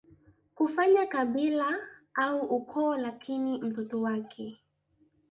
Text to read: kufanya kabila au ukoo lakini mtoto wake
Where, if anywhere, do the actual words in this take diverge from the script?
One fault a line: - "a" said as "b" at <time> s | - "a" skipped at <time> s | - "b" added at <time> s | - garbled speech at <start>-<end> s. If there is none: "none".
none